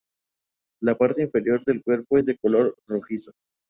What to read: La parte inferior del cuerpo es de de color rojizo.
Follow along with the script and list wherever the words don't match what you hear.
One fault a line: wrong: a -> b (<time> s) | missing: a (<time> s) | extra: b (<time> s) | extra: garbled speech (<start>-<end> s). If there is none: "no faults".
missing: de (2.4 s)